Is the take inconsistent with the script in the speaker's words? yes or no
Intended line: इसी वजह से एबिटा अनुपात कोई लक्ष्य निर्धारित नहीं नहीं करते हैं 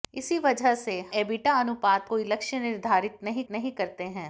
no